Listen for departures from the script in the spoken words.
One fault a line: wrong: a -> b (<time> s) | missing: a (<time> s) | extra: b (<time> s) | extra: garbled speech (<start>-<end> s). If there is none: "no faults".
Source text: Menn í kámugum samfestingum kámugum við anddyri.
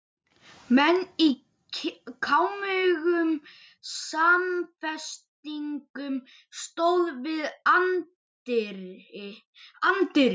wrong: kámugum -> stóðu (6.6 s)